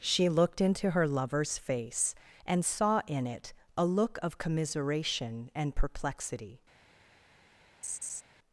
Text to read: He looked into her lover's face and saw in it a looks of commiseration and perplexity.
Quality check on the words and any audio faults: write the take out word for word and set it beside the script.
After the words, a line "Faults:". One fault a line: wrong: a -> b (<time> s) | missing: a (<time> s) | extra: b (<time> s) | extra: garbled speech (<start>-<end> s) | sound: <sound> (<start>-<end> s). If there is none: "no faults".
She looked into her lover's face and saw in it a look of commiseration and perplexity.
Faults:
wrong: He -> She (0.0 s)
wrong: looks -> look (3.8 s)
sound: laugh (7.8-8.2 s)